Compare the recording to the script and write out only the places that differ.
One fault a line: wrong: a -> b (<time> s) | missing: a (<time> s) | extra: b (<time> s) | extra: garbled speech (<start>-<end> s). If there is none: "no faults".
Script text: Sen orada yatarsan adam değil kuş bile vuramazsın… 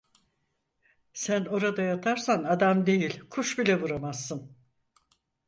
no faults